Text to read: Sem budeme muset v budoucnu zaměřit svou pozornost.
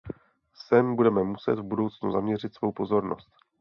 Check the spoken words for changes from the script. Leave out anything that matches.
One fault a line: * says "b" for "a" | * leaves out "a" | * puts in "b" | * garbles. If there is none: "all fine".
all fine